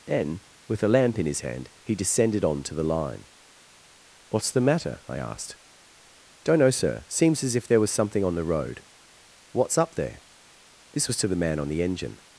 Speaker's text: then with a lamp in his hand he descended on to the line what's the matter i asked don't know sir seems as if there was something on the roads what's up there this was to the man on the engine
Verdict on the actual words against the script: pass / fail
fail